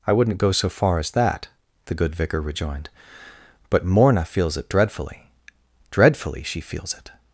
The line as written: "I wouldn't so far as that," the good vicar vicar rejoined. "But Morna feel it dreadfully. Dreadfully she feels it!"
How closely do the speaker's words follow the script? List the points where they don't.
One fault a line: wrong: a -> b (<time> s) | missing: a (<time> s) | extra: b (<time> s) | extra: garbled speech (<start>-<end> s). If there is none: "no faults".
extra: go (0.4 s)
missing: vicar (2.4 s)
wrong: feel -> feels (4.2 s)